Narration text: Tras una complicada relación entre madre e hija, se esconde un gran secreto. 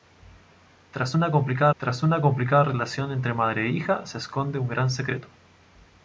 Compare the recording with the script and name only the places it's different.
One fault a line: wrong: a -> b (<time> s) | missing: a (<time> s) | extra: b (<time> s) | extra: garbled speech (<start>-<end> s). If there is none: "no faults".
extra: tras una complicada (1.8 s)